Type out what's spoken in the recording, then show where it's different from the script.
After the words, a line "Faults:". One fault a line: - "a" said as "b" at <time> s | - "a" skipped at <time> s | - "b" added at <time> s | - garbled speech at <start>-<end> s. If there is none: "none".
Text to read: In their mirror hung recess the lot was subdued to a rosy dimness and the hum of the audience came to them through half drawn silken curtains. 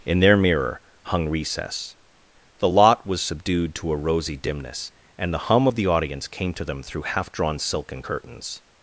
In their mirror hung recess the lot was subdued to a rosy dimness and the hum of the audience came to them through half drawn silken curtains.
Faults:
none